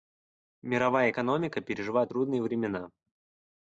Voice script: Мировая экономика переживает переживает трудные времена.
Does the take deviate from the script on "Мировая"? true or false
false